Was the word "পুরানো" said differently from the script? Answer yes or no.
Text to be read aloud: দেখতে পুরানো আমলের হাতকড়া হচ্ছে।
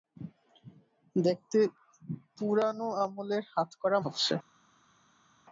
no